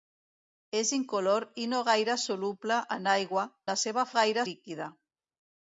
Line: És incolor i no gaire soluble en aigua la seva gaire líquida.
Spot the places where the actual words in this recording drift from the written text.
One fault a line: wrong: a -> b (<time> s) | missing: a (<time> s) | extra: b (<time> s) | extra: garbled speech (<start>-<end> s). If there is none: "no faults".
no faults